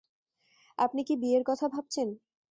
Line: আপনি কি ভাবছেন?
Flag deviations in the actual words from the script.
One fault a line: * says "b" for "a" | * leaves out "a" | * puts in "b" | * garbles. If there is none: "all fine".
* puts in "বিয়ের কথা"